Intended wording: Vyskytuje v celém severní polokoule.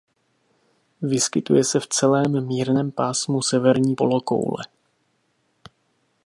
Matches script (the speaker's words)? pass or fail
fail